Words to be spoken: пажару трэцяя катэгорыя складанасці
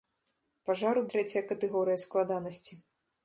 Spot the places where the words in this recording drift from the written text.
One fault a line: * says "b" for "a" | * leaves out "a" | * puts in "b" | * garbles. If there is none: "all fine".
all fine